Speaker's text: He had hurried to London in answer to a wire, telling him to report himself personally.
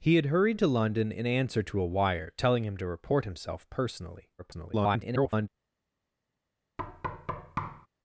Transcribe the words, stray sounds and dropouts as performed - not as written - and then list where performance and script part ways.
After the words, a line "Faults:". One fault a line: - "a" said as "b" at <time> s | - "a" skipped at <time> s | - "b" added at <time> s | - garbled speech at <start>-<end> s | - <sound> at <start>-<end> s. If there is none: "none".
He had hurried to London in answer to a wire, telling him to report himself personally. [garbled]
Faults:
- garbled speech at 4.4-5.5 s
- thud at 6.8-7.9 s